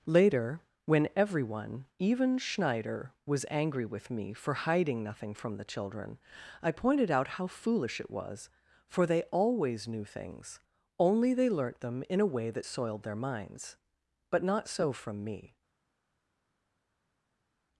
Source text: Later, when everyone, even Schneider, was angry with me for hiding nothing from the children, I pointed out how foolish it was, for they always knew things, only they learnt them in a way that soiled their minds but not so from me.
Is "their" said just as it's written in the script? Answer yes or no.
yes